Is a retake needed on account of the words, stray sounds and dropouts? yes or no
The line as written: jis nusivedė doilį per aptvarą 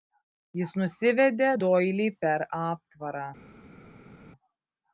no